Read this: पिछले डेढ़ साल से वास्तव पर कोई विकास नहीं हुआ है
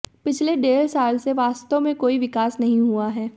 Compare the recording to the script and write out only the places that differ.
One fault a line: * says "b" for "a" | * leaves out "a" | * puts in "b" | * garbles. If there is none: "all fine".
* says "में" for "पर"